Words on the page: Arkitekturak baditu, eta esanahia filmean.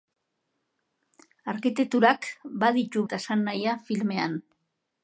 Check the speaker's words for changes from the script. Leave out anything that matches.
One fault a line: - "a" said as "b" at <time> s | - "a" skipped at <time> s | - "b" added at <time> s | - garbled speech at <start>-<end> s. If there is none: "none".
none